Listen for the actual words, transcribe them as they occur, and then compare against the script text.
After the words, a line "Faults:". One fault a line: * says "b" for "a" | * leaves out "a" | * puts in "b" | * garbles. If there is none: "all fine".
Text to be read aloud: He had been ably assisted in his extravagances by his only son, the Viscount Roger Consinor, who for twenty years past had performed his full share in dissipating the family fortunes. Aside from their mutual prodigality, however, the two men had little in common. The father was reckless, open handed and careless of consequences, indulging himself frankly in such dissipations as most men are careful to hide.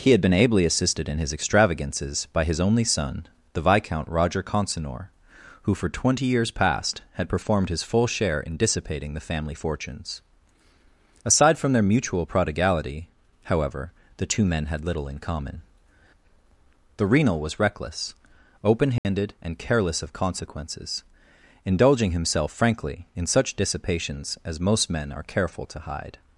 He had been ably assisted in his extravagances by his only son, the Viscount Roger Consinor, who for twenty years past had performed his full share in dissipating the family fortunes. Aside from their mutual prodigality, however, the two men had little in common. The renal was reckless, open handed and careless of consequences, indulging himself frankly in such dissipations as most men are careful to hide.
Faults:
* says "renal" for "father"